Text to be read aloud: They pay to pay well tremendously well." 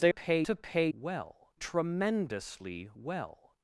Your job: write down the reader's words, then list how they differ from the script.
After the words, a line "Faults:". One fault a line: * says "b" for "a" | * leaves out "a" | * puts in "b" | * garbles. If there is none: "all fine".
They pay to pay well tremendously well."
Faults:
all fine